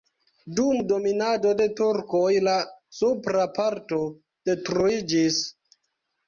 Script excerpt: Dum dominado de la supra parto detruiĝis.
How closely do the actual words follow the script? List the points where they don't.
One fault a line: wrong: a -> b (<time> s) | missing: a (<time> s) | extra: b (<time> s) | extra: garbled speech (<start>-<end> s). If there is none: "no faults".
extra: turkoj (1.8 s)